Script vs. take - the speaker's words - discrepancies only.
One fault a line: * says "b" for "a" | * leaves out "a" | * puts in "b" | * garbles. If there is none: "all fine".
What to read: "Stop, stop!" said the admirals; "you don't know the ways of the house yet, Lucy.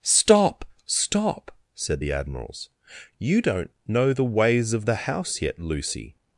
all fine